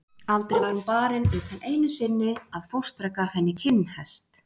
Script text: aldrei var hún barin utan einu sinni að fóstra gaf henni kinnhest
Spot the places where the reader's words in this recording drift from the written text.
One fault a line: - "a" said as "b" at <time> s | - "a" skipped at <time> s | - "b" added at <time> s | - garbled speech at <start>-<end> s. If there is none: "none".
none